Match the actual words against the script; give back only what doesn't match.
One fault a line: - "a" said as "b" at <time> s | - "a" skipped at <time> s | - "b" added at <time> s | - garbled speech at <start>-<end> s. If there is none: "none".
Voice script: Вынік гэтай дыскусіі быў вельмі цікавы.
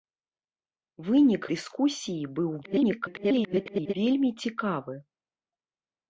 - "гэтай" skipped at 1.4 s
- garbled speech at 2.6-3.9 s